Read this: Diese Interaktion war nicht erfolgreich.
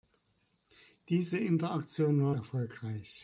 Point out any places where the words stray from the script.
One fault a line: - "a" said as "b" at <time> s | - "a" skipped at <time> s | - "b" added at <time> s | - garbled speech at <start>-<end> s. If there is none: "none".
- "nicht" skipped at 2.3 s